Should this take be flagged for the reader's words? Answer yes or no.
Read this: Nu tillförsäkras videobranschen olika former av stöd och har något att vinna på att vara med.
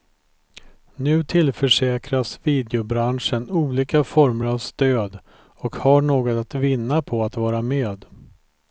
no